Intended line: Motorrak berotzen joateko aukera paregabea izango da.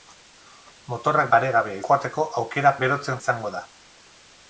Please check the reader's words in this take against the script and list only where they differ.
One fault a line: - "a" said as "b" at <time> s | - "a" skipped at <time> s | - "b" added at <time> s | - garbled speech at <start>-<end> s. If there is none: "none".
- "berotzen" said as "paregabea" at 1.3 s
- "paregabea" said as "berotzen" at 2.8 s